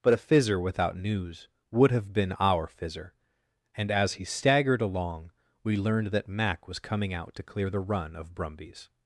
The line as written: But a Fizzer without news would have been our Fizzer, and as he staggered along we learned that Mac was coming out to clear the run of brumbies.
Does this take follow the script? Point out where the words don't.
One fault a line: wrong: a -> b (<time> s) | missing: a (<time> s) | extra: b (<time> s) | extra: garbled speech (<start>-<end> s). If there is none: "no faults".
no faults